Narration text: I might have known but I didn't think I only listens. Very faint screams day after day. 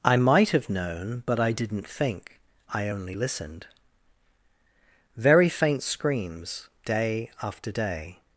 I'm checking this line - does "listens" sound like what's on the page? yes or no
no